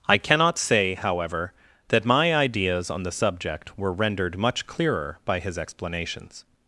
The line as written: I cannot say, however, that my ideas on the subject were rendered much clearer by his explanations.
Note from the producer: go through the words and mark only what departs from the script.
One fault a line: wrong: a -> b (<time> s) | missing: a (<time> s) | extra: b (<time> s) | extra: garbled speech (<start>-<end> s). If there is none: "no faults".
no faults